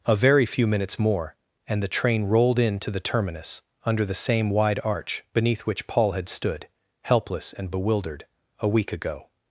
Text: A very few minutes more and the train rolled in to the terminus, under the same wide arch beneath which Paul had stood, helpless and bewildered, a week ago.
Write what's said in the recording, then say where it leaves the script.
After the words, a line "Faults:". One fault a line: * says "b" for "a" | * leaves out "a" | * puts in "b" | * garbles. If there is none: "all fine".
A very few minutes more and the train rolled in to the terminus, under the same wide arch beneath which Paul had stood, helpless and bewildered, a week ago.
Faults:
all fine